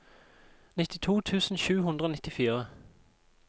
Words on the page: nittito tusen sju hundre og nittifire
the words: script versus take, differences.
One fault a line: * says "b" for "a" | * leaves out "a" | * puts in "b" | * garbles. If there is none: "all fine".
all fine